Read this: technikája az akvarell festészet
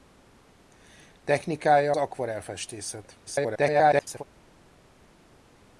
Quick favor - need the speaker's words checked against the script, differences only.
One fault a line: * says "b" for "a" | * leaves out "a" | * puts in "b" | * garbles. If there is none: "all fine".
* leaves out "az"
* garbles